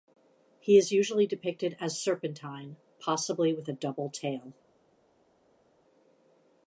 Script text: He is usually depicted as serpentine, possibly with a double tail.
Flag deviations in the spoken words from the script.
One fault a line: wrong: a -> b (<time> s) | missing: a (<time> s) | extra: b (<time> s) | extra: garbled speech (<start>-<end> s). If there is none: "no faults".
no faults